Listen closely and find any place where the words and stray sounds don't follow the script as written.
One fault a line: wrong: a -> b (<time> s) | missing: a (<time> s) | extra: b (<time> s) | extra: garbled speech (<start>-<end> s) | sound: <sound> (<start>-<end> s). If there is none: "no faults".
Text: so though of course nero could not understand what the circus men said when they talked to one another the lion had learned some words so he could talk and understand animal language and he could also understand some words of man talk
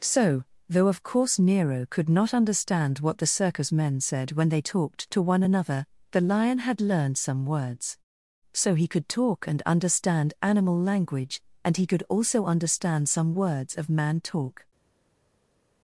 no faults